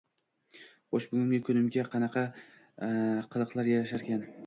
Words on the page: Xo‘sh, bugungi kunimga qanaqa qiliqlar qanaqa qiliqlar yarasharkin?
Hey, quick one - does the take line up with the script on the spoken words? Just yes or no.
no